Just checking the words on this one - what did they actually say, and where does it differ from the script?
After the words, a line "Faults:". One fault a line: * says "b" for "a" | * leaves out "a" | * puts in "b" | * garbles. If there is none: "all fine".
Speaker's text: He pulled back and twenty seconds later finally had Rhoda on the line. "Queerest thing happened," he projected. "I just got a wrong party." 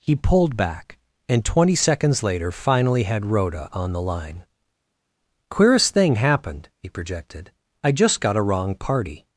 He pulled back and twenty seconds later finally had Rhoda on the line. "Queerest thing happened," he projected. "I just got a wrong party."
Faults:
all fine